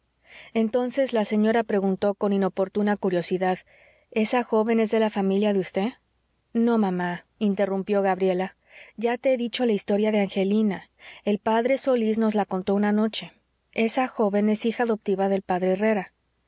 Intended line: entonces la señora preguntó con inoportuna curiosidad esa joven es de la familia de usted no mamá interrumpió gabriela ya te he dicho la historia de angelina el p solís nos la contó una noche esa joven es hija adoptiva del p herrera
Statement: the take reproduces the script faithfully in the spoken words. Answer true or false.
true